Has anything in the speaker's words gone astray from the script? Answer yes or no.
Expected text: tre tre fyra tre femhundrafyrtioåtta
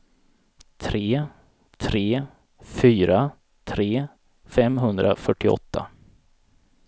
no